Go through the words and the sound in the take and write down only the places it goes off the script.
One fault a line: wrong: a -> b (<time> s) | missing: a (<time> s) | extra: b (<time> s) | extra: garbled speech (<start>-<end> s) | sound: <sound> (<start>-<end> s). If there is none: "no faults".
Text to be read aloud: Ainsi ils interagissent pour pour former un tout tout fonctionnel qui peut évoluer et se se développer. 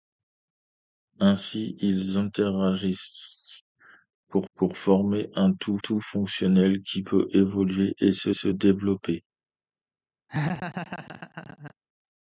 sound: laugh (10.3-11.7 s)